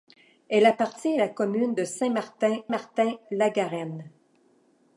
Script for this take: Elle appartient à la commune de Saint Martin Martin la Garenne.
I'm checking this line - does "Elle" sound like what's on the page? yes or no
yes